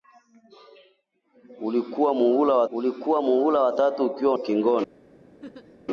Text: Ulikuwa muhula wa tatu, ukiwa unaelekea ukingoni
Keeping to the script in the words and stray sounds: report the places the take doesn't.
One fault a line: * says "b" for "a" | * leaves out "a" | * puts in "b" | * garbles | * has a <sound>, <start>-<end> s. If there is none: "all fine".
* puts in "ulikuwa muhula wa"
* leaves out "unaelekea"
* has a laugh, 5.4-5.8 s